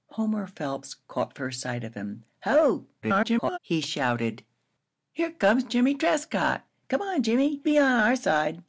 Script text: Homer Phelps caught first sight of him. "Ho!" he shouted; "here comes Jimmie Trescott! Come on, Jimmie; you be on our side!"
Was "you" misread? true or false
true